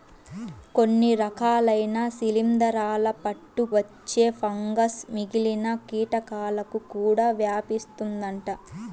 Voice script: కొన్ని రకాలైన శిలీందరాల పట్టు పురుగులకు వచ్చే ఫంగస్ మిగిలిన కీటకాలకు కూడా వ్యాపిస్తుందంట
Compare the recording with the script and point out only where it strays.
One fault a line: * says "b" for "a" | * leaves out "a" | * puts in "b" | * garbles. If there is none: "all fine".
* leaves out "పురుగులకు"